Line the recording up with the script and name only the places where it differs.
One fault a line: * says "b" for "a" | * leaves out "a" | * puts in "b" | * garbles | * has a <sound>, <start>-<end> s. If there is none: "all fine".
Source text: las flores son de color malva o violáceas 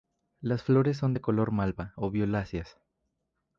all fine